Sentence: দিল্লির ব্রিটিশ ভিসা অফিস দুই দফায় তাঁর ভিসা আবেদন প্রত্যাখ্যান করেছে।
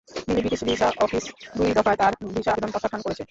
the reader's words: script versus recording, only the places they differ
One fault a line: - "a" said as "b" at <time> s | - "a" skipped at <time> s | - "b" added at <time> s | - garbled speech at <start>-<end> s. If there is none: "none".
none